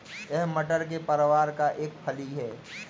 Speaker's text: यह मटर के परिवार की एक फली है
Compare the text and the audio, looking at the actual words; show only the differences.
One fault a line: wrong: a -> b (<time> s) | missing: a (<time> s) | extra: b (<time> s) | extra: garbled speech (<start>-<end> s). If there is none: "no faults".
wrong: की -> का (1.5 s)